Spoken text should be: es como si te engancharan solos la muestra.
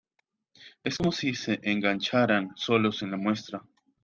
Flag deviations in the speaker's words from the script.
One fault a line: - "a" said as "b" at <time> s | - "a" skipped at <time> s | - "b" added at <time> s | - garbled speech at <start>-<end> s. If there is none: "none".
- "te" said as "se" at 1.4 s
- "en" added at 3.0 s